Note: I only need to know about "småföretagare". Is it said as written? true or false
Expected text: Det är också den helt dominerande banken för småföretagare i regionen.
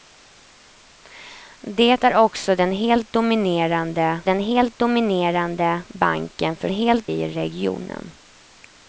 false